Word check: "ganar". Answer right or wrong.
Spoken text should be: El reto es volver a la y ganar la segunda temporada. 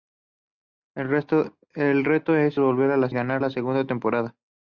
right